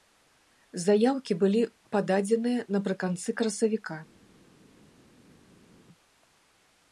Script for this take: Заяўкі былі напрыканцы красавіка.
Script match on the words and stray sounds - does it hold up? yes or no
no